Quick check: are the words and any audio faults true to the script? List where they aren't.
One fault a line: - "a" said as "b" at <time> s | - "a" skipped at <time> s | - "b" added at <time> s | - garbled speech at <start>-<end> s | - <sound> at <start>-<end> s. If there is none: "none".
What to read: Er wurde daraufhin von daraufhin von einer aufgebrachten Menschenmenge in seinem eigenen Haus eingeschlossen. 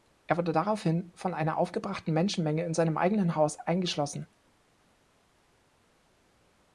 - "daraufhin von" skipped at 1.3 s